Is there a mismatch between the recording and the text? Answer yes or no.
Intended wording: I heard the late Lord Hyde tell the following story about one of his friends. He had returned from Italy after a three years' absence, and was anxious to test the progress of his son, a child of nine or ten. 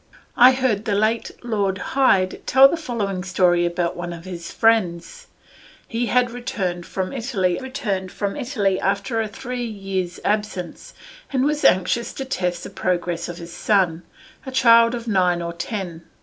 yes